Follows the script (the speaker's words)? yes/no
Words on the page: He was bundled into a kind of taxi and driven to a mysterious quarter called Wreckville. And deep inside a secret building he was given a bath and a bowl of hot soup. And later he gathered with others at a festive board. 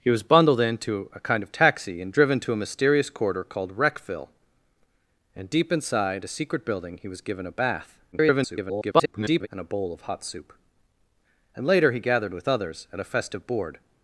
no